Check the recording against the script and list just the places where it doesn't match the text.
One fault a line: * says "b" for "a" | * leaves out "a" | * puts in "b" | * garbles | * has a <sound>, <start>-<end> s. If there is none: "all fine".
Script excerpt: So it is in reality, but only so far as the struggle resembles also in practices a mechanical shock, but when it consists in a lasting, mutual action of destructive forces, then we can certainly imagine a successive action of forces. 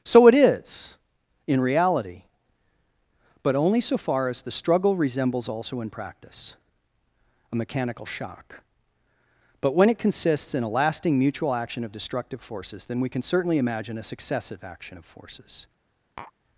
* says "practice" for "practices"
* has a tap, 16.2-16.3 s